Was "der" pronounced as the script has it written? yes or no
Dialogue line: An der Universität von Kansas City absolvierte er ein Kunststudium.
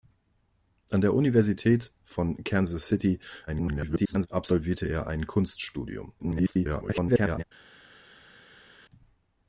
yes